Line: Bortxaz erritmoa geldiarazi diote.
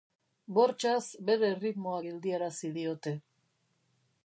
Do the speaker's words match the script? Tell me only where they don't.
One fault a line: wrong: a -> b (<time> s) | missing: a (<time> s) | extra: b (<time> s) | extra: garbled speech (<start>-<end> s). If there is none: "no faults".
extra: bere (1.3 s)